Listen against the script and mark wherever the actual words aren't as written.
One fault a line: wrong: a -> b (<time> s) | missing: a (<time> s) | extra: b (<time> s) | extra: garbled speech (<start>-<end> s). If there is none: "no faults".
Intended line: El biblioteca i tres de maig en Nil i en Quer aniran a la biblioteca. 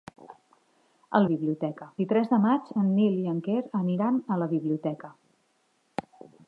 no faults